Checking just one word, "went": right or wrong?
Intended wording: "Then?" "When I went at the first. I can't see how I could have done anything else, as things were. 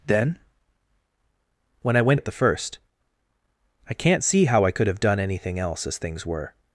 right